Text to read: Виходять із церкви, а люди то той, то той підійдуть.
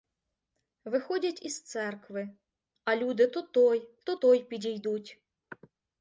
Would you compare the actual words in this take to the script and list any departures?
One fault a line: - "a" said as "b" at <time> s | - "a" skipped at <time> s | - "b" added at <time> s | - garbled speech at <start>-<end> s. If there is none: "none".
none